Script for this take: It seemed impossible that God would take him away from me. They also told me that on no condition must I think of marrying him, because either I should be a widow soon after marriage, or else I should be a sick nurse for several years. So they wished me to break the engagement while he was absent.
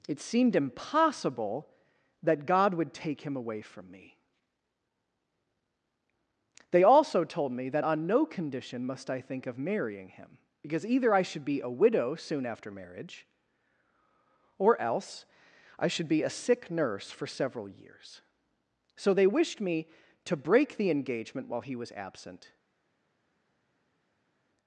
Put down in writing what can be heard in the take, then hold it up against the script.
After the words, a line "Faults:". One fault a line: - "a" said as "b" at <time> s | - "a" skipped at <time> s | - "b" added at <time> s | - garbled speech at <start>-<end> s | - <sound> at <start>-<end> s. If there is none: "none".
It seemed impossible that God would take him away from me. They also told me that on no condition must I think of marrying him, because either I should be a widow soon after marriage, or else I should be a sick nurse for several years. So they wished me to break the engagement while he was absent.
Faults:
none